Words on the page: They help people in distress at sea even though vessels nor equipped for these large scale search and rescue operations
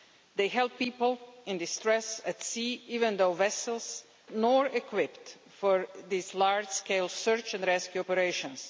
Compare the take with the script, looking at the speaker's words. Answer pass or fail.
pass